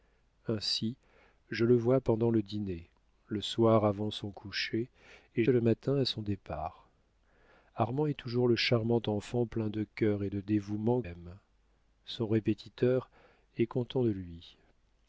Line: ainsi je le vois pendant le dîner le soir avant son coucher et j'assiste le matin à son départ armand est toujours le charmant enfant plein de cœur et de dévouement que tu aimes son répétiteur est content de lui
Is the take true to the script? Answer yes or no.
no